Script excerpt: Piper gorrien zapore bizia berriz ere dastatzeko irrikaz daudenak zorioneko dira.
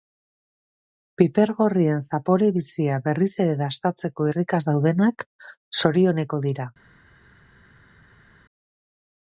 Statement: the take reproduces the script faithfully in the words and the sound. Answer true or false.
true